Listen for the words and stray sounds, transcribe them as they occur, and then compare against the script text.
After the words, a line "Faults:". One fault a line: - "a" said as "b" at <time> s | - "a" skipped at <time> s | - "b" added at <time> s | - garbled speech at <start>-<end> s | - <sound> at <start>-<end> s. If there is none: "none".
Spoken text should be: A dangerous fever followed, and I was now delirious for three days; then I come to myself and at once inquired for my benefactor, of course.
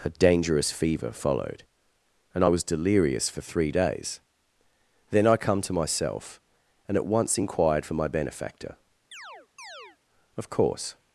A dangerous fever followed, and I was delirious for three days; then I come to myself and at once inquired for my benefactor, of course.
Faults:
- "now" skipped at 2.6 s
- chirp at 9.1-10.0 s